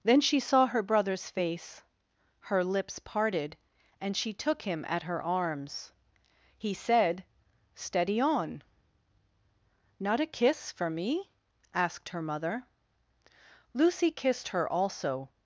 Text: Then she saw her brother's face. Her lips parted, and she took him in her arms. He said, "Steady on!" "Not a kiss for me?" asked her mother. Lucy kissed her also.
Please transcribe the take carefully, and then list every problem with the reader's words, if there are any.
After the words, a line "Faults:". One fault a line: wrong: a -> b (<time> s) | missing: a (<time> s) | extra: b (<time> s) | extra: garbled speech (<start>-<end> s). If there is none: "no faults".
Then she saw her brother's face. Her lips parted, and she took him at her arms. He said, "Steady on!" "Not a kiss for me?" asked her mother. Lucy kissed her also.
Faults:
wrong: in -> at (4.9 s)